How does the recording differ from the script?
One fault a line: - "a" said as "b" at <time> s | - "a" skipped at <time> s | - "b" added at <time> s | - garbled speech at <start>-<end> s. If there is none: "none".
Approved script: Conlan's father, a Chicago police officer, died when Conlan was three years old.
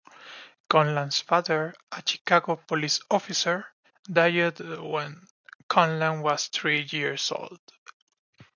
none